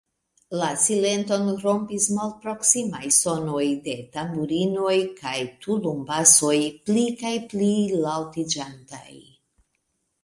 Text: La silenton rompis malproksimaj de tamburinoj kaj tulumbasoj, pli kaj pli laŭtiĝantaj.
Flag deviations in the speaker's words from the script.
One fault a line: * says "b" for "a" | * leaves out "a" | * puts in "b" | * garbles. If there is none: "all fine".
* puts in "sonoj"